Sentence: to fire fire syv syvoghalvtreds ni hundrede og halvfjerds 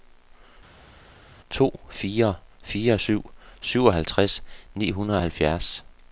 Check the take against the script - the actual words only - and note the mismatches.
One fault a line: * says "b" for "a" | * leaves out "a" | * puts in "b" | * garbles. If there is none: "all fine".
all fine